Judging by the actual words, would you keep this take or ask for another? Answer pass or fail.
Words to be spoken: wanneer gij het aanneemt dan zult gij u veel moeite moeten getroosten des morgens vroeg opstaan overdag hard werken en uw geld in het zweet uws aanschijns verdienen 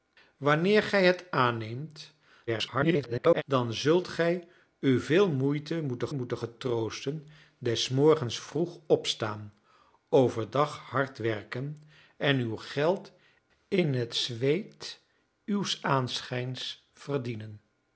fail